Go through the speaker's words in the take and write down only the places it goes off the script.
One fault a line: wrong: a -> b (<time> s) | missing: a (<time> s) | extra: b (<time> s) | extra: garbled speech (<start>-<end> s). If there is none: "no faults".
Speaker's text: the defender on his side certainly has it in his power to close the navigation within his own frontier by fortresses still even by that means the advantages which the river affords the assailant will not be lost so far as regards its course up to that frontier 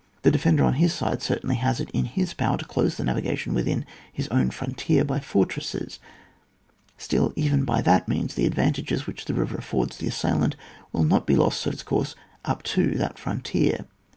missing: far as regards (11.7 s)